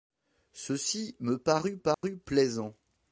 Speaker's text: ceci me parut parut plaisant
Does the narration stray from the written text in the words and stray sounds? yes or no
yes